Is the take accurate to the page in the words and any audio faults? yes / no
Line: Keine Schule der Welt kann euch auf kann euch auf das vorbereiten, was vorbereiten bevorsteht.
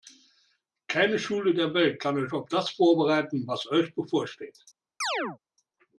no